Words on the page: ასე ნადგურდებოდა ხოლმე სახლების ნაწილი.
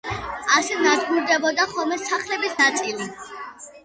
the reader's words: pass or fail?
pass